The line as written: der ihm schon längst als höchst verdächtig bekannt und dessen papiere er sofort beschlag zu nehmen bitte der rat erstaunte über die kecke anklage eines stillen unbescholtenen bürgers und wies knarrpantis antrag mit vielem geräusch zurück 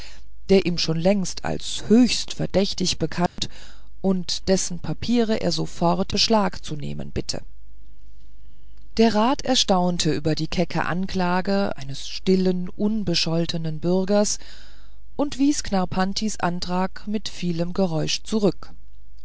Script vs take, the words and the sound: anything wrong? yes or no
yes